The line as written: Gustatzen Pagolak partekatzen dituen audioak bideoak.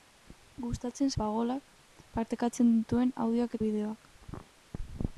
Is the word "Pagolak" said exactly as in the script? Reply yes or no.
yes